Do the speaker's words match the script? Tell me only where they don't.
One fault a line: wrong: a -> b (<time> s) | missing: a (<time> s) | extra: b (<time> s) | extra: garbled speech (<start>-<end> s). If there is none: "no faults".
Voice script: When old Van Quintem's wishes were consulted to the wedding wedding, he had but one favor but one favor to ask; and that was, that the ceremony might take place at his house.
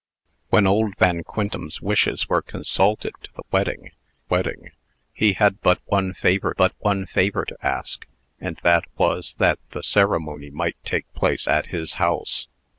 no faults